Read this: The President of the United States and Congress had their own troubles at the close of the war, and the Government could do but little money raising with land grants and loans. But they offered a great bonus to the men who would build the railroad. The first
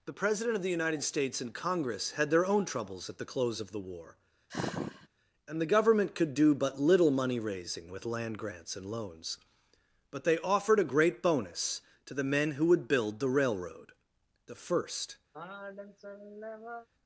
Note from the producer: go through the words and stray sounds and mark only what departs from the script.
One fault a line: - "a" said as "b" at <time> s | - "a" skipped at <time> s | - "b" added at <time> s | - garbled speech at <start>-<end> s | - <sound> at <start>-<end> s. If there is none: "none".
- sigh at 4.5-5.1 s
- sigh at 15.3-16.9 s